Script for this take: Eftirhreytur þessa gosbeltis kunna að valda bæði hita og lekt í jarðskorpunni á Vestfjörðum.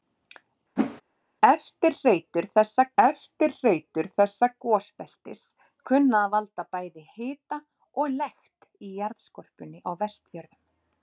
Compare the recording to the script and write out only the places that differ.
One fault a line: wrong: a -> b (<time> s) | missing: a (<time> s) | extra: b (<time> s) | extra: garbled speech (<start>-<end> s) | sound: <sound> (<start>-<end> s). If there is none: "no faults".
sound: whoosh (0.8-1.0 s)
extra: eftirhreytur þessa (3.0 s)